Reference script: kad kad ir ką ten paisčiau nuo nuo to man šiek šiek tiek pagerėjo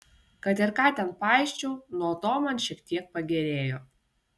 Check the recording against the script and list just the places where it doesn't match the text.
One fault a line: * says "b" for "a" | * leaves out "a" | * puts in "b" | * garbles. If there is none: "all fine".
* leaves out "kad"
* leaves out "nuo"
* leaves out "šiek"